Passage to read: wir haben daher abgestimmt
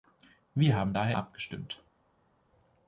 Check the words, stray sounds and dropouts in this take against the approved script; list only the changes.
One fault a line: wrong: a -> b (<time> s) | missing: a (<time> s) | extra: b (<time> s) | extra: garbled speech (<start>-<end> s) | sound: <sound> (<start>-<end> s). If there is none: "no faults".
no faults